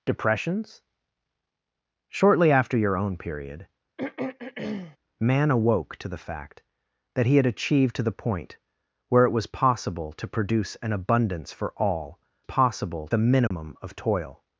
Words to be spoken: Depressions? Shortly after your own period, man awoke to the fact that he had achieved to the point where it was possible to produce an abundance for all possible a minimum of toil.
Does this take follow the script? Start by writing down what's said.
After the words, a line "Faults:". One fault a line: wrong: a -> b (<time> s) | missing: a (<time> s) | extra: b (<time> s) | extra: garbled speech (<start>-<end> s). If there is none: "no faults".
Depressions? Shortly after your own period, man awoke to the fact that he had achieved to the point where it was possible to produce an abundance for all possible a minimum of toil.
Faults:
no faults